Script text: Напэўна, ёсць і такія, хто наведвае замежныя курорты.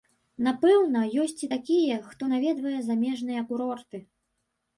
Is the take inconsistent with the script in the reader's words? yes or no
no